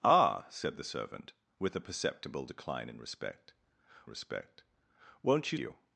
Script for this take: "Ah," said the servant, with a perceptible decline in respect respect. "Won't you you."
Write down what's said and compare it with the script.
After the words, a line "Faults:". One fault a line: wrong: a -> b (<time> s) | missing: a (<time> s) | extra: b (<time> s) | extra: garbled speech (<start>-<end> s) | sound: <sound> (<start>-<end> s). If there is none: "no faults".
"Ah," said the servant, with a perceptible decline in respect respect. "Won't you you."
Faults:
no faults